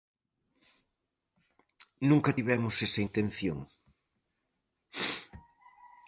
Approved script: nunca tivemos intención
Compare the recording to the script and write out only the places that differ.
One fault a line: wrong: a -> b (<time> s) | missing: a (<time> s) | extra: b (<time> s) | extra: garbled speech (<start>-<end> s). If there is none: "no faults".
extra: esa (2.9 s)